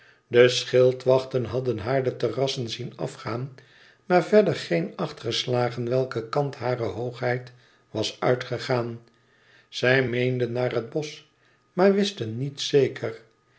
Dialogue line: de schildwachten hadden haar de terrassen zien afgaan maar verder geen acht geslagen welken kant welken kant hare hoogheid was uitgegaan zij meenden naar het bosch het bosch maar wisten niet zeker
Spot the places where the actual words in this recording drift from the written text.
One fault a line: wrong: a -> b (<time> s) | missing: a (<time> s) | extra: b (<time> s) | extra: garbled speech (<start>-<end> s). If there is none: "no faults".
missing: welken kant (6.5 s)
missing: het bosch (11.2 s)